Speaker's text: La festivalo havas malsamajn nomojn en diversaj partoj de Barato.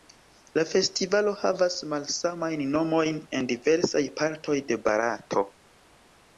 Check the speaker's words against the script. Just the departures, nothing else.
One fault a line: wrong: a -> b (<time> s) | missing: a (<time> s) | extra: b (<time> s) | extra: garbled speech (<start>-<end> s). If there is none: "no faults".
no faults